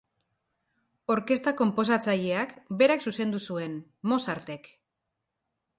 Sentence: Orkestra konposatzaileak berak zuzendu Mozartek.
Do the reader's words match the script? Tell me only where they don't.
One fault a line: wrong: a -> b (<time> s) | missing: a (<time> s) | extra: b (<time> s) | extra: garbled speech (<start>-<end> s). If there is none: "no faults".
extra: zuen (3.5 s)